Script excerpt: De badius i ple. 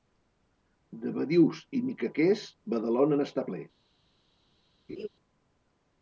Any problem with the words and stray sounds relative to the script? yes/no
yes